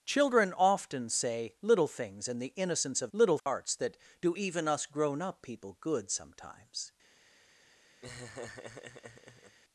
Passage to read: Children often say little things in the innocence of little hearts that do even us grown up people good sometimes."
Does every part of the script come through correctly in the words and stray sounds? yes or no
no